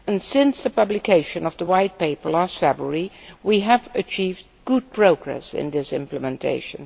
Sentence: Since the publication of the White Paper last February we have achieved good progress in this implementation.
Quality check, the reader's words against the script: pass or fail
pass